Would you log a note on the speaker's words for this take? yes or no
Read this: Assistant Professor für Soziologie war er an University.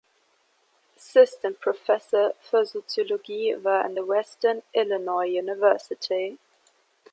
yes